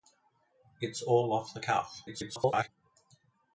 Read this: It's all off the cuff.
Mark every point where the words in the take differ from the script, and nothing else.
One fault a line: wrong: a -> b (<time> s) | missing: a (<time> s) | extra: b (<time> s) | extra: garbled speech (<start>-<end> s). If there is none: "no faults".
extra: garbled speech (2.1-2.7 s)